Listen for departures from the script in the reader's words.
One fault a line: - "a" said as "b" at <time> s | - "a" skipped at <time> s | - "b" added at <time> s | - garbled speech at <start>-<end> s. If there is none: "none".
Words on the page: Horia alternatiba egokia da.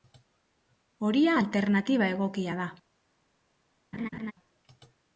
none